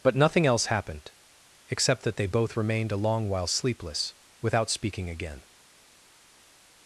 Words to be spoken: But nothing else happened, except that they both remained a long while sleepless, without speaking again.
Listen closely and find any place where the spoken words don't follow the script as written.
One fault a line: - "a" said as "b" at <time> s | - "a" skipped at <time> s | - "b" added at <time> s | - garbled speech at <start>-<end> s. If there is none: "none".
none